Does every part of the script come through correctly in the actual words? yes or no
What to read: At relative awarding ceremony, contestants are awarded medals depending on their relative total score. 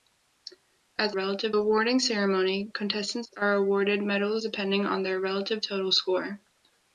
yes